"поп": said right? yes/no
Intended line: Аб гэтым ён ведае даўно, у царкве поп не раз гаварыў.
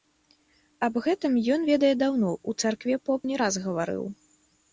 yes